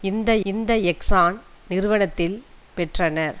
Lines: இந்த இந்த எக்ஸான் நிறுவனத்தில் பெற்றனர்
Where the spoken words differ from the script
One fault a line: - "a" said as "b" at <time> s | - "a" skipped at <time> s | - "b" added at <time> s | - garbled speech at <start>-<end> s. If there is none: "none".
none